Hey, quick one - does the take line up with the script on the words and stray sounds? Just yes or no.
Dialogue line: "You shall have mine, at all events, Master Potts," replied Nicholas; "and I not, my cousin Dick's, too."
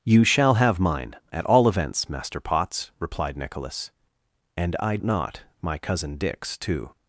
yes